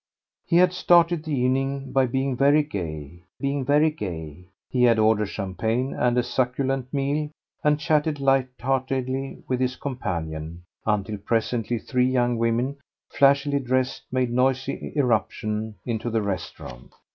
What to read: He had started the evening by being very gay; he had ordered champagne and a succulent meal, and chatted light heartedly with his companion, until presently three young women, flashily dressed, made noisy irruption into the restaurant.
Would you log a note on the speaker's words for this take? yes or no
yes